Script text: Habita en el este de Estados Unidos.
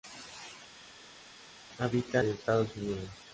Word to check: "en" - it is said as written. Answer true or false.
false